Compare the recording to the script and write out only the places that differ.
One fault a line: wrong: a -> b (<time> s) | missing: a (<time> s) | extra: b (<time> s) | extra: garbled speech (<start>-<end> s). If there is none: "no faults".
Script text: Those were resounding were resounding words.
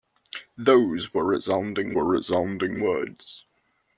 no faults